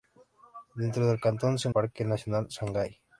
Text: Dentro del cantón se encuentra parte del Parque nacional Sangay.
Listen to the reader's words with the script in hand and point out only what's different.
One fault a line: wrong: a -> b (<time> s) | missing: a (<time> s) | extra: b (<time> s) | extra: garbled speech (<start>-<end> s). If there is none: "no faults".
missing: encuentra parte del (1.7 s)